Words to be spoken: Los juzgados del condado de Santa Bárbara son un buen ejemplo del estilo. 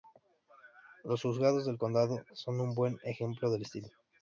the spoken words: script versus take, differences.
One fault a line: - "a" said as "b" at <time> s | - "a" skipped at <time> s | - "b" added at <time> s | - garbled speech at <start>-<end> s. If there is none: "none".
- "de Santa Bárbara" skipped at 2.2 s